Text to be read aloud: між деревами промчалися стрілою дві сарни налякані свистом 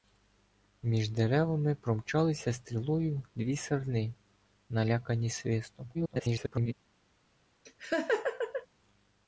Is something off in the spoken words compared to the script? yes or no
yes